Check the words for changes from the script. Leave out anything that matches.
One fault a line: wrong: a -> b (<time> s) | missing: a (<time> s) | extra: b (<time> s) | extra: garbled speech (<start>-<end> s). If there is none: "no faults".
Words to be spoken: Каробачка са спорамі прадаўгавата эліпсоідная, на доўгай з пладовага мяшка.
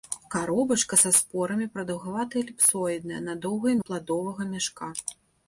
no faults